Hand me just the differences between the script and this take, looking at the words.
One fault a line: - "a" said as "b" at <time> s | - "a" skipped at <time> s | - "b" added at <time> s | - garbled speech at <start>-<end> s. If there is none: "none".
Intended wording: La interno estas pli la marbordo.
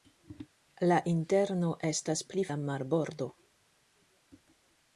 none